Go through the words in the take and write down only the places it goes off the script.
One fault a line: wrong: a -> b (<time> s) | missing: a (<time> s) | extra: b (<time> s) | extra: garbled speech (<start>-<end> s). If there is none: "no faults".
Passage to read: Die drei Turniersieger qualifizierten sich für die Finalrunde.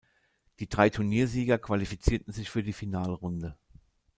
no faults